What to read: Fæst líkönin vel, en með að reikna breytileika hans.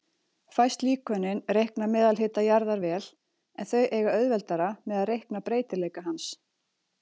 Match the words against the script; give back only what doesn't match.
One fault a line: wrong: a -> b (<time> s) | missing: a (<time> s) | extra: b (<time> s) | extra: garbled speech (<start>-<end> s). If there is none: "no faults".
extra: reikna meðalhita jarðar (1.6 s)
extra: þau eiga auðveldara (3.7 s)